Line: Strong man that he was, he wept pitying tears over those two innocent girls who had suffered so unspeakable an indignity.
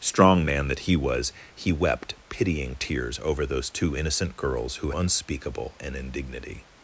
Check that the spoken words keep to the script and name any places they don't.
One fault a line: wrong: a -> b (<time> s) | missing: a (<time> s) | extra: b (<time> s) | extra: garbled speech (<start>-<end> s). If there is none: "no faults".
missing: had suffered so (4.9 s)